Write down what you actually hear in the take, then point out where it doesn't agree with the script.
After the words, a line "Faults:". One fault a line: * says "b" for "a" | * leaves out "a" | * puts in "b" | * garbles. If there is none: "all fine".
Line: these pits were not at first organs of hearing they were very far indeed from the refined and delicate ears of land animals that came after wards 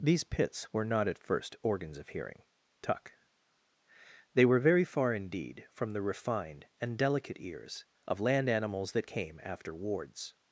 these pits were not at first organs of hearing tuck they were very far indeed from the refined and delicate ears of land animals that came after wards
Faults:
* puts in "tuck"